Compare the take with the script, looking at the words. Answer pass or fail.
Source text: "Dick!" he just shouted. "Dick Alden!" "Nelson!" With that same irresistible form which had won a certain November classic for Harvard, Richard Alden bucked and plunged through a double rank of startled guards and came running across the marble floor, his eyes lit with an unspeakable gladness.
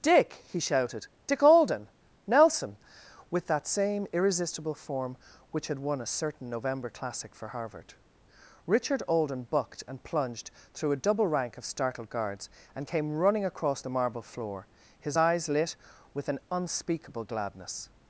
fail